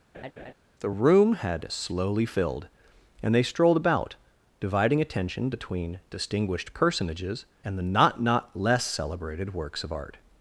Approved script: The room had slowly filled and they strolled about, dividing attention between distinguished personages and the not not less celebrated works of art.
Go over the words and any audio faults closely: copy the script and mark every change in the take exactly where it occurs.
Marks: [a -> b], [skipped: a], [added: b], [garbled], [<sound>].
[laugh] The room had slowly filled and they strolled about, dividing attention between distinguished personages and the not not less celebrated works of art.